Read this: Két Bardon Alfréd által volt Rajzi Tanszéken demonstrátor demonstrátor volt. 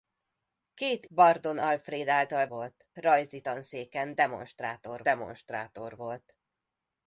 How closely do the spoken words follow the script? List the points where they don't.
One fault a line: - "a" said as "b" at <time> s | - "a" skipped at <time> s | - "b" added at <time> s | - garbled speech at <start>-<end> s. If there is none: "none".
none